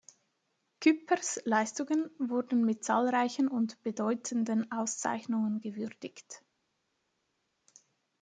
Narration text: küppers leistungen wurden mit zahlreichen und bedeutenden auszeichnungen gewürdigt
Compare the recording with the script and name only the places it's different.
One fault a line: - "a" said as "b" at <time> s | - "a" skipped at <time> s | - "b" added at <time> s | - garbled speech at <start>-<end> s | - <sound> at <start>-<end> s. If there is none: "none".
none